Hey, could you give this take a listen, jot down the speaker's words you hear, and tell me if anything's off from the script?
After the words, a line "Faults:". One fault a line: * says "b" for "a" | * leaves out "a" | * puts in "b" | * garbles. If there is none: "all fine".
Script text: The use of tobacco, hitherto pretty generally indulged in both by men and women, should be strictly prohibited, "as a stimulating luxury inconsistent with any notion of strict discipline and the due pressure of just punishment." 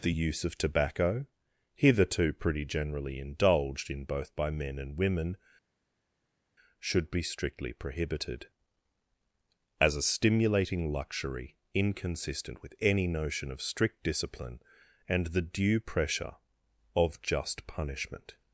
The use of tobacco, hitherto pretty generally indulged in both by men and women, should be strictly prohibited, "as a stimulating luxury inconsistent with any notion of strict discipline and the due pressure of just punishment."
Faults:
all fine